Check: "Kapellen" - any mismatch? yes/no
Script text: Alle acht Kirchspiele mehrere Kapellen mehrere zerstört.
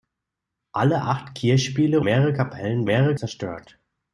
no